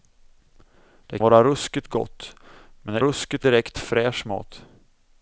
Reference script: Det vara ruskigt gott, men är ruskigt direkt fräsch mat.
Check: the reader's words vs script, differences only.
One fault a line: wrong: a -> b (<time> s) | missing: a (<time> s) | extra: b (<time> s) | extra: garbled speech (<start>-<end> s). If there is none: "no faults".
no faults